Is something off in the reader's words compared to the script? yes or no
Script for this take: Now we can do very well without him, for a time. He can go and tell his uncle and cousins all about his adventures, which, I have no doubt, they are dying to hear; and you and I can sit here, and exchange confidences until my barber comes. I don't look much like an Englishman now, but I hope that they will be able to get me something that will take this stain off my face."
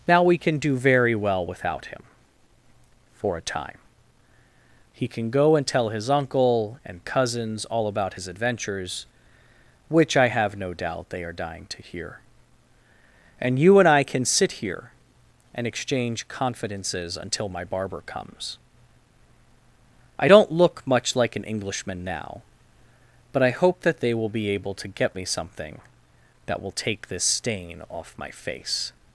no